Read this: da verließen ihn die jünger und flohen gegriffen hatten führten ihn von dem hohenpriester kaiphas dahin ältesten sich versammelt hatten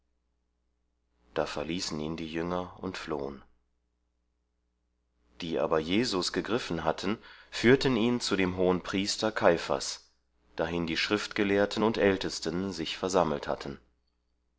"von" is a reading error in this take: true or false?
true